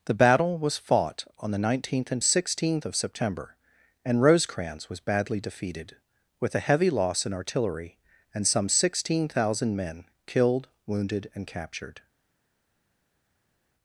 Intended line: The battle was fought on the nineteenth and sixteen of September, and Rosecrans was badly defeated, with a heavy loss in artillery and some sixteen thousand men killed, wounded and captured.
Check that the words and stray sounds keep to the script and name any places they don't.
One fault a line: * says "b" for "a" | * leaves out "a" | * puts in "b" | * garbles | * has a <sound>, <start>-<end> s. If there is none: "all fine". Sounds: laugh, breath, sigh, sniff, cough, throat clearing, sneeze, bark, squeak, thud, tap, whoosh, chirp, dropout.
all fine